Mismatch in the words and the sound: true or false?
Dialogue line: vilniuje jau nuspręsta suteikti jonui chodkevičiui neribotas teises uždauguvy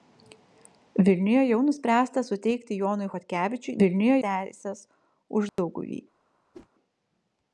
true